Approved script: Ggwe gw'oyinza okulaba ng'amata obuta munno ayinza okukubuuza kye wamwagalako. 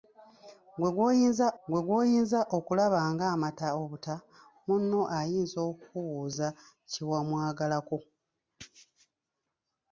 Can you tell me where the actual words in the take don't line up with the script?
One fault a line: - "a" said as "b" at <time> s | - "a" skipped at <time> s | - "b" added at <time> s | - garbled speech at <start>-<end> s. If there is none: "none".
- "ggwe gw'oyinza" added at 1.7 s